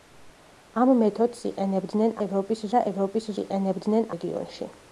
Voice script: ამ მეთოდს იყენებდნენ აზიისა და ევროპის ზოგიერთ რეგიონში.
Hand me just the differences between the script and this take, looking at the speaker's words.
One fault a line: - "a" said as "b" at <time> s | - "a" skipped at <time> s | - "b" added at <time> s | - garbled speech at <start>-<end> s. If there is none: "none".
- "აზიისა" said as "ევროპის" at 2.3 s
- "ზოგიერთ" said as "იყენებდნენ" at 3.4 s